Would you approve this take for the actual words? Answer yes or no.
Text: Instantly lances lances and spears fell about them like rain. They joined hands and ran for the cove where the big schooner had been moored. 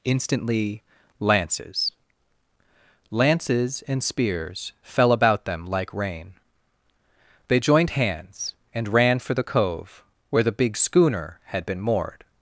yes